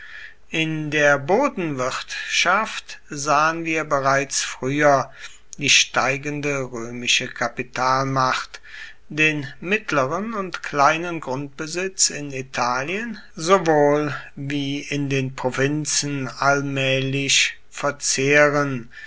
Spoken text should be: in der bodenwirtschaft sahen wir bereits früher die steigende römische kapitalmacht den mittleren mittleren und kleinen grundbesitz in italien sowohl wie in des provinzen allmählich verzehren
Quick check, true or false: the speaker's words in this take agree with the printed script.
false